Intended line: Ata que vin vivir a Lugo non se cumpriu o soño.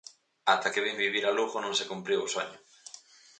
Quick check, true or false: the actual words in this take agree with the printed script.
true